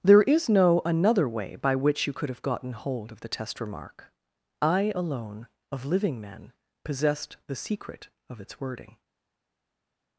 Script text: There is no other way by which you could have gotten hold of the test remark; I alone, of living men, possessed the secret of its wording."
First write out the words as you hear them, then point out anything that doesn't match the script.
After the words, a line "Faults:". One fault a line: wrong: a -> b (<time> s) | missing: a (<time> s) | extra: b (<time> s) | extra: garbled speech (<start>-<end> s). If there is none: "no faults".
There is no another way by which you could have gotten hold of the test remark; I alone, of living men, possessed the secret of its wording."
Faults:
wrong: other -> another (0.8 s)